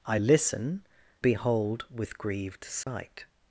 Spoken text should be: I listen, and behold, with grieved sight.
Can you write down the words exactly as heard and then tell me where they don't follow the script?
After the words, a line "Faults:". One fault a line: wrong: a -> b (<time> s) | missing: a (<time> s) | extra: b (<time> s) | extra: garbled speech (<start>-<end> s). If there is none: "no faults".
I listen, behold, with grieved sight.
Faults:
missing: and (0.9 s)